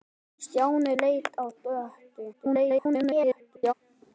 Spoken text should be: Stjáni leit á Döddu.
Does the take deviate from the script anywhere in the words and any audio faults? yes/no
yes